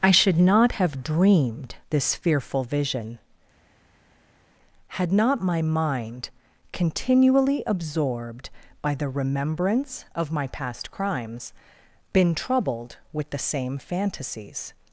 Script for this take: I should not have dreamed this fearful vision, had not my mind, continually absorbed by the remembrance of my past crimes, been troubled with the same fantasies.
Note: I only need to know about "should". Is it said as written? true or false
true